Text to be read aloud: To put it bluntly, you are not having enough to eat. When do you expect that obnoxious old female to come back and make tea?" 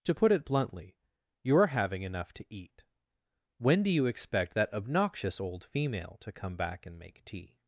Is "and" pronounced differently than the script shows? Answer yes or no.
no